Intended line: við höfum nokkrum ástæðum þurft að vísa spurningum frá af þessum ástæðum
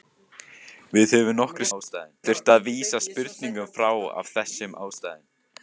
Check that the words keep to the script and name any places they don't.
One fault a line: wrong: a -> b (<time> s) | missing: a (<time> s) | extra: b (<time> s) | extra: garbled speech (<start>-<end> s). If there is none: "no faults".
no faults